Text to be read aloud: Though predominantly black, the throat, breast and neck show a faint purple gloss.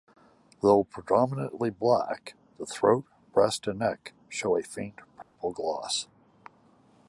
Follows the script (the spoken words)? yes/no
yes